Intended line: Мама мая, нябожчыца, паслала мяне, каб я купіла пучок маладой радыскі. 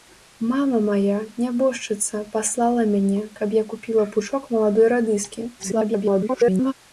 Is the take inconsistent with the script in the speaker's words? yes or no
yes